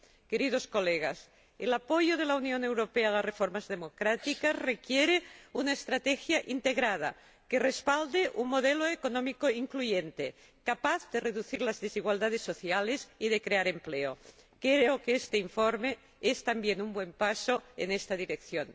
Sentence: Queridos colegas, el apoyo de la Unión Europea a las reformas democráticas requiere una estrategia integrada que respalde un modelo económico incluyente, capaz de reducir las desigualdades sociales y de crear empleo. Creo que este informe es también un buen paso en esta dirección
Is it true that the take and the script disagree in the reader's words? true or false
false